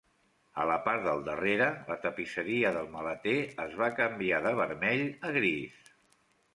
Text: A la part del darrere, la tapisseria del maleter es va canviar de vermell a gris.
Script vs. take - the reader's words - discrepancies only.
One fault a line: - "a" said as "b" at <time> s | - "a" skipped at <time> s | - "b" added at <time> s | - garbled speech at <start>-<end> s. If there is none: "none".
none